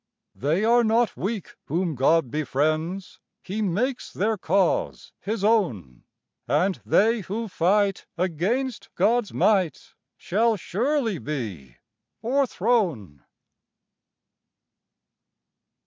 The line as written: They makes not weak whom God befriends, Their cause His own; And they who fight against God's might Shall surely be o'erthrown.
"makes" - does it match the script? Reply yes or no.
no